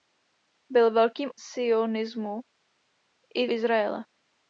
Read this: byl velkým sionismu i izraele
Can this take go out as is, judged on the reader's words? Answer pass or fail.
pass